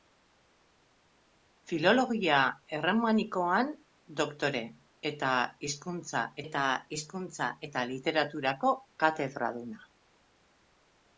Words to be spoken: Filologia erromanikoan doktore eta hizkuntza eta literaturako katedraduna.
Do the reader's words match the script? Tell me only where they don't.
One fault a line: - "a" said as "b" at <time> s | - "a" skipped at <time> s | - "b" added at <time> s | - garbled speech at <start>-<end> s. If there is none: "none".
- "hizkuntza eta" added at 7.0 s